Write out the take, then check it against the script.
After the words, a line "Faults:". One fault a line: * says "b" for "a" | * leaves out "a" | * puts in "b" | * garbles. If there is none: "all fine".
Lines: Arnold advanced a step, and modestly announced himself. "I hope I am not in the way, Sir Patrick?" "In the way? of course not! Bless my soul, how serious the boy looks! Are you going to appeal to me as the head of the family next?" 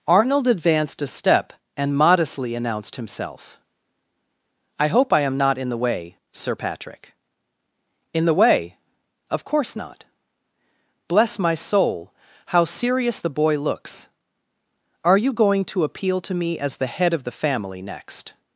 Arnold advanced a step, and modestly announced himself. "I hope I am not in the way, Sir Patrick?" "In the way? of course not! Bless my soul, how serious the boy looks! Are you going to appeal to me as the head of the family next?"
Faults:
all fine